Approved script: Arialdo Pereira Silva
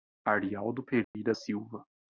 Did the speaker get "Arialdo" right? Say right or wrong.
right